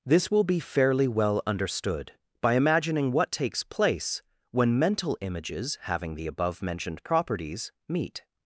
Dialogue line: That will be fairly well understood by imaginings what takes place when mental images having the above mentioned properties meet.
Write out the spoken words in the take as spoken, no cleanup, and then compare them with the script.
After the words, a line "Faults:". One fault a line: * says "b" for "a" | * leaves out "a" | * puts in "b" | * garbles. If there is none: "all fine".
This will be fairly well understood by imagining what takes place when mental images having the above mentioned properties meet.
Faults:
* says "This" for "That"
* says "imagining" for "imaginings"